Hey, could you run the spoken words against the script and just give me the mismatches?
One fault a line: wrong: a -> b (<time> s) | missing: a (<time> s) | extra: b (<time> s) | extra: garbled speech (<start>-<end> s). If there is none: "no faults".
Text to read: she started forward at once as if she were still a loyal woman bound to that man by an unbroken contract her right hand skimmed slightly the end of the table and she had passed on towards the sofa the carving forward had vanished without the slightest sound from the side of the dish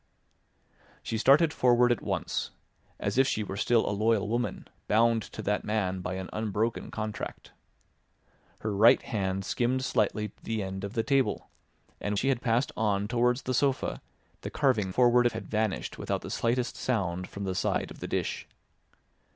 no faults